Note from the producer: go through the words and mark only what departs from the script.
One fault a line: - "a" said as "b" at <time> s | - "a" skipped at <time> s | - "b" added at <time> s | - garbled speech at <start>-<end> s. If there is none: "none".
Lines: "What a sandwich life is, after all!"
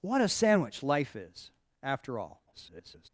- garbled speech at 2.5-3.1 s